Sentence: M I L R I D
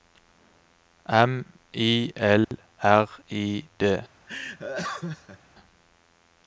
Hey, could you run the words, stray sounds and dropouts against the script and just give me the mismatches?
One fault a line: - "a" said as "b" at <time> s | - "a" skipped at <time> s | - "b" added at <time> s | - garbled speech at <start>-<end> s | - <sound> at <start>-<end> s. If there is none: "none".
- dropout at 2.4-2.5 s
- laugh at 4.3-5.4 s